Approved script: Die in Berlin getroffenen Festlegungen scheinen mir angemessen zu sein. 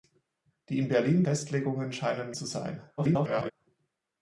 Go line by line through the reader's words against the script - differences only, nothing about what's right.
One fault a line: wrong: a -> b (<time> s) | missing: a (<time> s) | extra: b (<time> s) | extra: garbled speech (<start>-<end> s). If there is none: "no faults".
missing: getroffenen (1.2 s)
missing: mir angemessen (2.3 s)
extra: garbled speech (3.0-3.5 s)